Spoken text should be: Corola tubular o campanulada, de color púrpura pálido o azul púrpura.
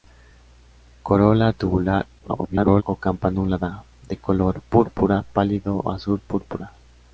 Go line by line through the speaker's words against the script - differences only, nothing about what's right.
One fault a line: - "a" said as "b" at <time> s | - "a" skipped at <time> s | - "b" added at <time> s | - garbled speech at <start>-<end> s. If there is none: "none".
- garbled speech at 2.2-2.8 s